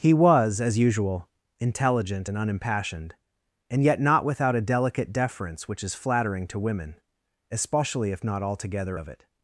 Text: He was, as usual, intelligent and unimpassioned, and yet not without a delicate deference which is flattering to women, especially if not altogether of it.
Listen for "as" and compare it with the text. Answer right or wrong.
right